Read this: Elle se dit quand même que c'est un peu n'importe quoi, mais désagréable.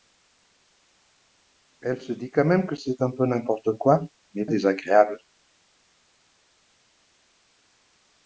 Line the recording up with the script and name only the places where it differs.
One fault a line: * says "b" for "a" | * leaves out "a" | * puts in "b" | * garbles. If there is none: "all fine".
all fine